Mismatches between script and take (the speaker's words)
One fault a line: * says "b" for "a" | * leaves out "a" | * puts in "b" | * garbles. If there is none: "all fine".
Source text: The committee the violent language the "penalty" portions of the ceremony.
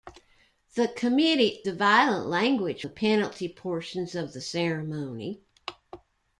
all fine